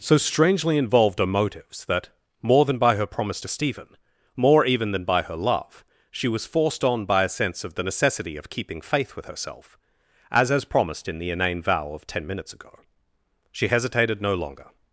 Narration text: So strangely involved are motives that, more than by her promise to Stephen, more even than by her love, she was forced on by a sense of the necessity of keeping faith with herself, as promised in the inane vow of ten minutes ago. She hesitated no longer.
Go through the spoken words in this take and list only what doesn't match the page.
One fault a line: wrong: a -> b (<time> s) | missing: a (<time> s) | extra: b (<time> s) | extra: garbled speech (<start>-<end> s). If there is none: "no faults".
extra: as (10.5 s)